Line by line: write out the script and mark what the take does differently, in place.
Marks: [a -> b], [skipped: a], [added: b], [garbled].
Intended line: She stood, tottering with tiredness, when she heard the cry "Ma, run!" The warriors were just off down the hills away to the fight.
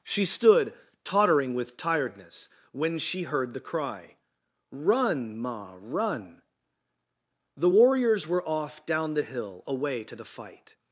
She stood, tottering with tiredness, when she heard the cry [added: Run] "Ma, run!" The warriors were [skipped: just] off down the [hills -> hill] away to the fight.